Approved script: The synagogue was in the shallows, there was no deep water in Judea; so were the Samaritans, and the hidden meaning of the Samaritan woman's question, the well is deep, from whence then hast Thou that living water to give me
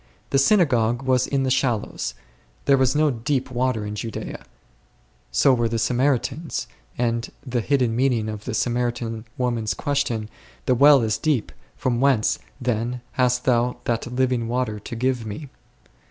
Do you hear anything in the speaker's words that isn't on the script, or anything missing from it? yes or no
no